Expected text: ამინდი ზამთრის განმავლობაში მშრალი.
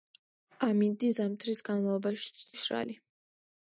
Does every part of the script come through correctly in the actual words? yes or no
yes